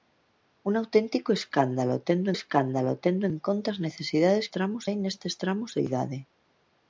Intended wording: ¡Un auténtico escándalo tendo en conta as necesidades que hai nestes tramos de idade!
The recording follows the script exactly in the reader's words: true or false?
false